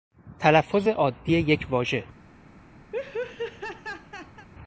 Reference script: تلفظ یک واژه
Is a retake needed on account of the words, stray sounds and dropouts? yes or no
yes